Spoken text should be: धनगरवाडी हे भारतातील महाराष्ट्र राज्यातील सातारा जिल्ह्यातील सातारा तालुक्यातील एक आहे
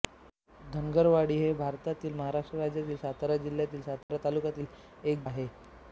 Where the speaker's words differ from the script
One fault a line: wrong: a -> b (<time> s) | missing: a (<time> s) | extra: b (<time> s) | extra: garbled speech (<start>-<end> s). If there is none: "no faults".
no faults